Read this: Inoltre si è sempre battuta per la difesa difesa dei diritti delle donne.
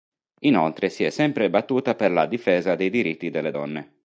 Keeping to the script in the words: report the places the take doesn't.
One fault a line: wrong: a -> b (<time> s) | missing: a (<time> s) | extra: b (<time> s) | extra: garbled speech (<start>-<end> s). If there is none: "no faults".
missing: difesa (2.7 s)